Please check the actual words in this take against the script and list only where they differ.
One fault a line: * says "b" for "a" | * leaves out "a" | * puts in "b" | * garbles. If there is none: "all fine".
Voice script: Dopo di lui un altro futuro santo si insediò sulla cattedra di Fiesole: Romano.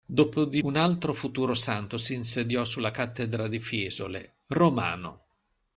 * leaves out "lui"